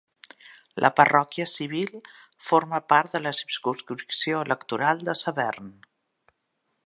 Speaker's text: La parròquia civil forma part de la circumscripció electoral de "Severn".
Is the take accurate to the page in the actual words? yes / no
yes